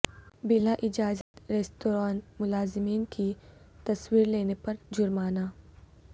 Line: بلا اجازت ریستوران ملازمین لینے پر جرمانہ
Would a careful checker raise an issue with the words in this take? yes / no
yes